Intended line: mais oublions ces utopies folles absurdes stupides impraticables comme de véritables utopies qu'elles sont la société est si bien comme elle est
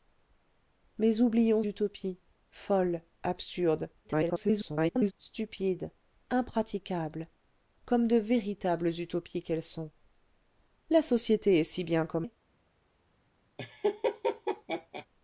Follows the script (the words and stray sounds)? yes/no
no